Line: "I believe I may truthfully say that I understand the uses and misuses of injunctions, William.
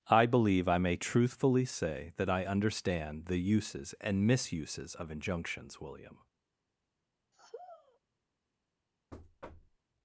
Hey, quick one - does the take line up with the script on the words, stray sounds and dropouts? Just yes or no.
no